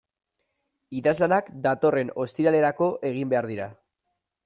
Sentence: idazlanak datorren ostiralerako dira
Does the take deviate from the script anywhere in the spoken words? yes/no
yes